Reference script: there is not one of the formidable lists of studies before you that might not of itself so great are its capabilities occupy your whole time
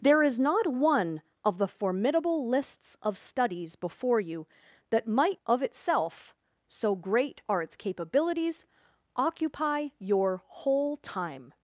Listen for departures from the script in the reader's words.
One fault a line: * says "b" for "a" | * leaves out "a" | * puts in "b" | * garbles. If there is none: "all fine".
* leaves out "not"